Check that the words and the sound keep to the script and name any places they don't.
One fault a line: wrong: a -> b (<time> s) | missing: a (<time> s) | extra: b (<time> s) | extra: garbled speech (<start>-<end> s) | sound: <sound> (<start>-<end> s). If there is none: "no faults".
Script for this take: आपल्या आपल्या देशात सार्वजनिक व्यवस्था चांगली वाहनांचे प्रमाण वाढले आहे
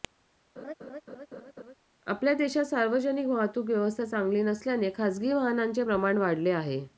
sound: laugh (0.6-1.7 s)
missing: आपल्या (2.3 s)
extra: वाहतूक (3.3 s)
extra: नसल्याने खासगी (4.4 s)